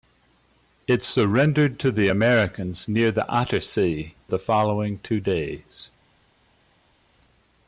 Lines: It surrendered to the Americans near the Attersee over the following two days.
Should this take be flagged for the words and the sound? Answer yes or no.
yes